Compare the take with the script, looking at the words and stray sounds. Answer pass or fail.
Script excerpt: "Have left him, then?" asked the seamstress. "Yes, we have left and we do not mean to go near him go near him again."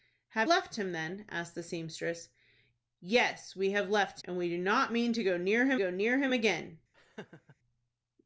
fail